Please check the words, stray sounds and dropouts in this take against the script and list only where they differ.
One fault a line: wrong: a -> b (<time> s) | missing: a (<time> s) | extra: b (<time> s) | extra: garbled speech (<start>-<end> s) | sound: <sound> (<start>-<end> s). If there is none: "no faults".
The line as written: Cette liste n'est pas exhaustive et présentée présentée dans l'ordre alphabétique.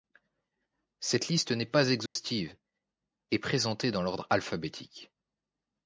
sound: dropout (2.1-2.2 s)
missing: présentée (3.9 s)